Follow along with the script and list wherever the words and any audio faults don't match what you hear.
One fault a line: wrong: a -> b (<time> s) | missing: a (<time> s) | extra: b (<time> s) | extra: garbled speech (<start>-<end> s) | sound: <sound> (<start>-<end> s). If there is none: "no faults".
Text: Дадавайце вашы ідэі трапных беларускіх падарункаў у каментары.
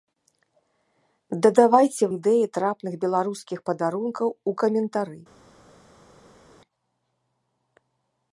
missing: вашы (2.0 s)